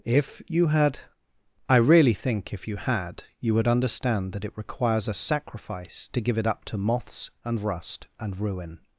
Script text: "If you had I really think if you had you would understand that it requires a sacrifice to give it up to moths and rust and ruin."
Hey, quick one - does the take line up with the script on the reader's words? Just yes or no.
yes